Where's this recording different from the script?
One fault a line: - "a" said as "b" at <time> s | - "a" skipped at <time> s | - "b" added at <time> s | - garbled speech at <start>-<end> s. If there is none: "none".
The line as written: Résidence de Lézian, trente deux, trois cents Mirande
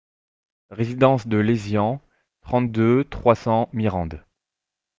none